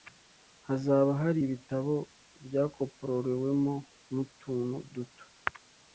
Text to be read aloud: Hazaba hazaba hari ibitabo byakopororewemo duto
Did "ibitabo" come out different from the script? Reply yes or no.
no